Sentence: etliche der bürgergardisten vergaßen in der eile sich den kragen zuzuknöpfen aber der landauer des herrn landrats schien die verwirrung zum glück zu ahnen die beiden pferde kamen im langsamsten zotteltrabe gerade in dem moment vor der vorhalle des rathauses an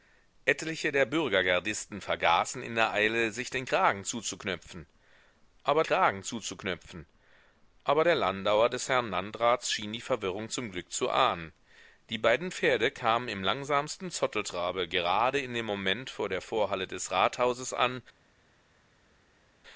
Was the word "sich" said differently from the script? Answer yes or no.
no